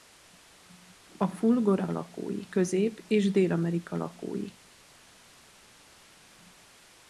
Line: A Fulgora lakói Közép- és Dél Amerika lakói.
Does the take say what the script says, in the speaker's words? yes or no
yes